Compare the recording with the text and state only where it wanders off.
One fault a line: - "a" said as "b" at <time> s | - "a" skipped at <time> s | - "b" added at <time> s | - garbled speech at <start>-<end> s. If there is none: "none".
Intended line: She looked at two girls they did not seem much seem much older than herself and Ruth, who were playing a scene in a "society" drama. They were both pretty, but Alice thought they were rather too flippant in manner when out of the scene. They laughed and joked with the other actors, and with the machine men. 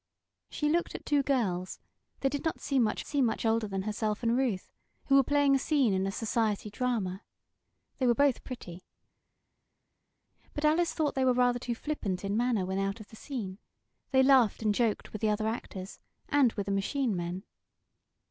none